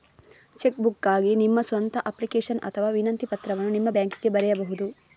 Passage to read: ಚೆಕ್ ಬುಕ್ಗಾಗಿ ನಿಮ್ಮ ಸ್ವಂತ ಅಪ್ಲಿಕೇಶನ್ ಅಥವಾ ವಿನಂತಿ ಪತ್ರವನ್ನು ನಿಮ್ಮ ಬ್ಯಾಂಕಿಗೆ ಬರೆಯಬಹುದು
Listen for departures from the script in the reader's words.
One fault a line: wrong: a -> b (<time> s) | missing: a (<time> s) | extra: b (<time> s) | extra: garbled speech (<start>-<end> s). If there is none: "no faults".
no faults